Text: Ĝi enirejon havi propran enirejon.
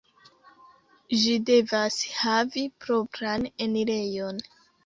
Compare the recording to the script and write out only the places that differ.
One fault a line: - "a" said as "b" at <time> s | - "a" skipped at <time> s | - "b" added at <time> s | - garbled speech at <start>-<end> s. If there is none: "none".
- "enirejon" said as "devas" at 1.5 s